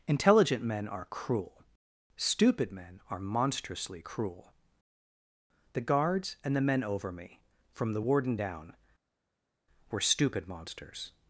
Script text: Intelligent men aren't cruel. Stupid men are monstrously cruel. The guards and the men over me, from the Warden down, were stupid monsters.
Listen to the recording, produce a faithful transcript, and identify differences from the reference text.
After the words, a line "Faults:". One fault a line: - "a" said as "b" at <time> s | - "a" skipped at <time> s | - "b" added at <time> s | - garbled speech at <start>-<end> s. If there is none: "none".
Intelligent men are cruel. Stupid men are monstrously cruel. The guards and the men over me, from the Warden down, were stupid monsters.
Faults:
- "aren't" said as "are" at 0.9 s